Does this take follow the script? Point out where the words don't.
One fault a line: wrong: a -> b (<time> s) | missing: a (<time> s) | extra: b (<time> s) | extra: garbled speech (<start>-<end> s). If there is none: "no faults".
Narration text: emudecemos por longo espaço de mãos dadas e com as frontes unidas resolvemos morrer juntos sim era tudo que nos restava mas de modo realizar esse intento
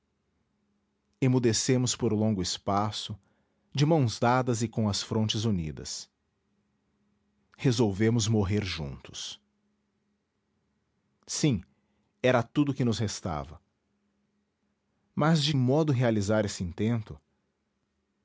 no faults